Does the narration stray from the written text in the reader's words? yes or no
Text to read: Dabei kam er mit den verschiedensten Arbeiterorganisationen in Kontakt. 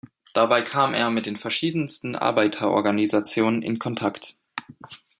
no